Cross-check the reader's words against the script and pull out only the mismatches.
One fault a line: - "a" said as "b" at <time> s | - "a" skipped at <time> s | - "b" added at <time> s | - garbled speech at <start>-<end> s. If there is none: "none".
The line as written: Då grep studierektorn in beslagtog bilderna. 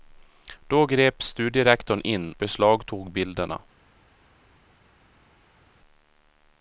none